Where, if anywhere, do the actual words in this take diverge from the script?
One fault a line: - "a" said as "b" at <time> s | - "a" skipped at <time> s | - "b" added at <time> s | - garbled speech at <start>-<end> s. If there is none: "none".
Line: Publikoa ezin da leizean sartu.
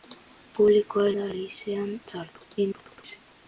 - "ezin" skipped at 1.0 s
- garbled speech at 2.6-3.2 s